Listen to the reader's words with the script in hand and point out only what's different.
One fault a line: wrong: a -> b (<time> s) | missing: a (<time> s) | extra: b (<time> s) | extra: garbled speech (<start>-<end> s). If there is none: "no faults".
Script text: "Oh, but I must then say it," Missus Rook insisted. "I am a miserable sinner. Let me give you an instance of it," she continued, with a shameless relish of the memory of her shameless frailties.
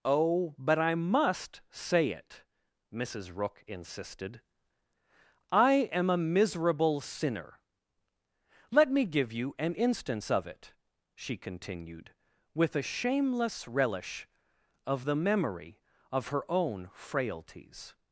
missing: then (1.6 s)
wrong: shameless -> own (16.5 s)